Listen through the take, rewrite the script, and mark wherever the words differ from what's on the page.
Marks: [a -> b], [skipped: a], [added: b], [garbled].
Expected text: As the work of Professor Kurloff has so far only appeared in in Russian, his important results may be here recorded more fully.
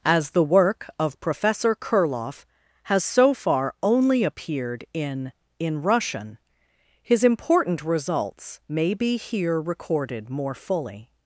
As the work of Professor Kurloff has so far only appeared in in Russian, his important results may be here recorded more fully.